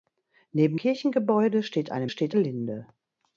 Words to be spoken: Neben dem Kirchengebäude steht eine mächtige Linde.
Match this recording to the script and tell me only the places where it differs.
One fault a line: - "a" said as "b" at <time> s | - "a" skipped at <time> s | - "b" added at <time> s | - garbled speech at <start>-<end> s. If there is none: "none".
- "dem" skipped at 0.8 s
- "mächtige" said as "steht" at 2.1 s